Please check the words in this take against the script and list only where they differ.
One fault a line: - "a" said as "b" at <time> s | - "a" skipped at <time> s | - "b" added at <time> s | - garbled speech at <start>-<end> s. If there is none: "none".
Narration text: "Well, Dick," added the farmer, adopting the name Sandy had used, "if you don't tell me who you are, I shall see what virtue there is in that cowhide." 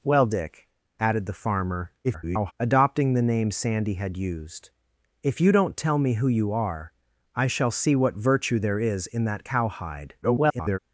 - garbled speech at 2.0-2.5 s
- garbled speech at 10.2-10.8 s